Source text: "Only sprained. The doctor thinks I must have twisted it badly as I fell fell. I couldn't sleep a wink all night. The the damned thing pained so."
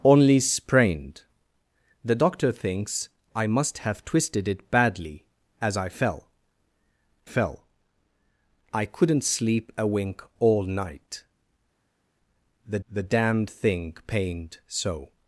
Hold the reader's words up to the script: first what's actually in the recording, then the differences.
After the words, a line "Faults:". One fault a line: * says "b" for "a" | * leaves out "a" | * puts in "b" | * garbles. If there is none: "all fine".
"Only sprained. The doctor thinks I must have twisted it badly as I fell fell. I couldn't sleep a wink all night. The the damned thing pained so."
Faults:
all fine